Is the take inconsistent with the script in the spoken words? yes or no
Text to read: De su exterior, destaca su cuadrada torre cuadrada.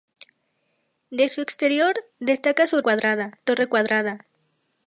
no